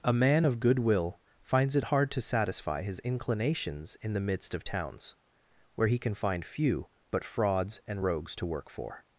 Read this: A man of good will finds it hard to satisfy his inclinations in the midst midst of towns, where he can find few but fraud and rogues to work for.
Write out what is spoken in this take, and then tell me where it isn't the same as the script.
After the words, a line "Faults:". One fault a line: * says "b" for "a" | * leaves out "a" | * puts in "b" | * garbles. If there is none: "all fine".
A man of good will finds it hard to satisfy his inclinations in the midst of towns, where he can find few but frauds and rogues to work for.
Faults:
* leaves out "midst"
* says "frauds" for "fraud"